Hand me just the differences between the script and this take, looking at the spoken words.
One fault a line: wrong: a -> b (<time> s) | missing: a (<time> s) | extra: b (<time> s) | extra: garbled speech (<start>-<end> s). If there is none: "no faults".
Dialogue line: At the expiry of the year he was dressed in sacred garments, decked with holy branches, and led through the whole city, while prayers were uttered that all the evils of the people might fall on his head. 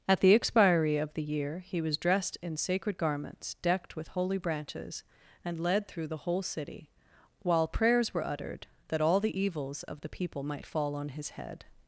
no faults